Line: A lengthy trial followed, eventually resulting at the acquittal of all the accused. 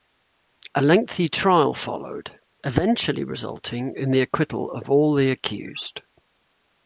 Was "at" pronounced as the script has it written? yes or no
no